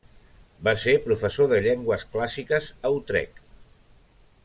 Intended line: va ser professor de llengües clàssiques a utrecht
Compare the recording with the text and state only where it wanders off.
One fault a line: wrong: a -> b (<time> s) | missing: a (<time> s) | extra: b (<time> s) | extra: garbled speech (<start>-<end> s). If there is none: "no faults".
no faults